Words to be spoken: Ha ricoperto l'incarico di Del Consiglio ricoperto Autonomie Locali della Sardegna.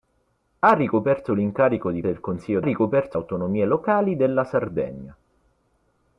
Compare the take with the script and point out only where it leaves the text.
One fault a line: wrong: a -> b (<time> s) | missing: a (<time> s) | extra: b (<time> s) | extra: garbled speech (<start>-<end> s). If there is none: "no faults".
no faults